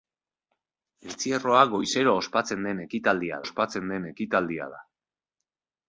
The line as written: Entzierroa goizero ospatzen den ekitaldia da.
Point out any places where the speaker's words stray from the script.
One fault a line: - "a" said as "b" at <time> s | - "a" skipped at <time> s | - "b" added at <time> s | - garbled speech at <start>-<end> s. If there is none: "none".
- "ospatzen den ekitaldia" added at 3.4 s